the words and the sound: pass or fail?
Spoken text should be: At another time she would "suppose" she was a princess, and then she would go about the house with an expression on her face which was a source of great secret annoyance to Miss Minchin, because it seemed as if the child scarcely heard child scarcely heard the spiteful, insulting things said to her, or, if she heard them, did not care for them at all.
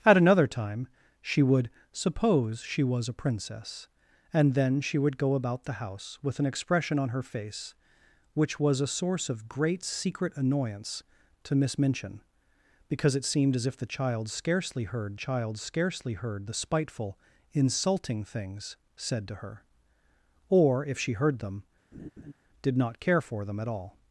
fail